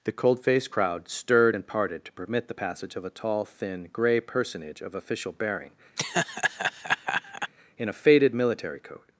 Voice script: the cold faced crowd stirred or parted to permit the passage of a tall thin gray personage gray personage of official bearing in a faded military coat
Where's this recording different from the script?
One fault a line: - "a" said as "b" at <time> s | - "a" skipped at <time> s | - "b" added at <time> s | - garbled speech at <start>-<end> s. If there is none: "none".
- "or" said as "and" at 1.5 s
- "gray personage" skipped at 4.8 s